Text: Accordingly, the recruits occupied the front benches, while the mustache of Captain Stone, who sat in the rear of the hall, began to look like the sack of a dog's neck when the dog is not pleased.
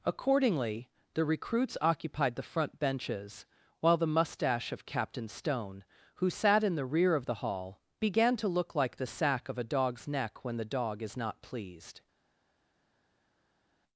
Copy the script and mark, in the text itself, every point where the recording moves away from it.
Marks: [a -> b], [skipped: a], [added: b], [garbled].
Accordingly, the recruits occupied the front benches, while the mustache of Captain Stone, who sat in the rear of the hall, began to look like the sack of a dog's neck when the dog is not pleased.